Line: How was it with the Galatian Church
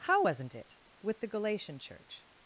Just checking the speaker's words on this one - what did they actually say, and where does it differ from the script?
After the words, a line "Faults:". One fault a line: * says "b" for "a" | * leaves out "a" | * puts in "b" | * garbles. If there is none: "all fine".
How wasn't it with the Galatian Church
Faults:
* says "wasn't" for "was"